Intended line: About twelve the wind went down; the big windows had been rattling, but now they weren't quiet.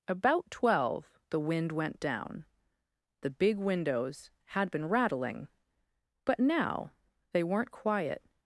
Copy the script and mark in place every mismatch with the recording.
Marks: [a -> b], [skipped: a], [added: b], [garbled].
About twelve the wind went down; the big windows had been rattling, but now they weren't quiet.